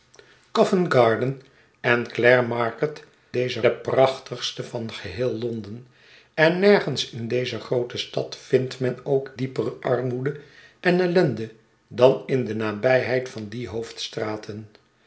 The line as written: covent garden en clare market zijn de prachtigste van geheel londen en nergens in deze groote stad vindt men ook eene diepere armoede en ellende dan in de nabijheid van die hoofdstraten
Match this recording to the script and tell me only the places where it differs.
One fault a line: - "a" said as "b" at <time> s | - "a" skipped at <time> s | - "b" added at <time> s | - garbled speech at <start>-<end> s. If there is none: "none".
- "zijn" said as "deze" at 3.3 s
- "eene" skipped at 9.3 s